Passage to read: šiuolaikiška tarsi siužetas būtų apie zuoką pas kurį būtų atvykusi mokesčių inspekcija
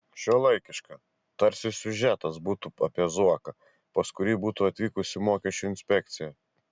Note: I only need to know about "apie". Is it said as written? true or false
true